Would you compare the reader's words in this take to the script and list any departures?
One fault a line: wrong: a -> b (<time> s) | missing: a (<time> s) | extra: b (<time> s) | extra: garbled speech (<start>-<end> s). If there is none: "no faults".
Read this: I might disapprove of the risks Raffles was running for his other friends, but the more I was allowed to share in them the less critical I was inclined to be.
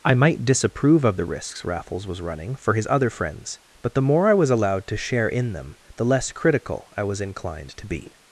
no faults